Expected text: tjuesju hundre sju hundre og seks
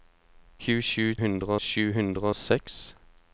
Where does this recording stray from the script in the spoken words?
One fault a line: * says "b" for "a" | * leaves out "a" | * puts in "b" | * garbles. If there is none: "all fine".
all fine